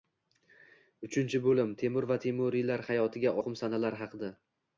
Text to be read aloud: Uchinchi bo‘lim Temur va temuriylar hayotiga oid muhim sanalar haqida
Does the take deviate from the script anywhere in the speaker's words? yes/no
yes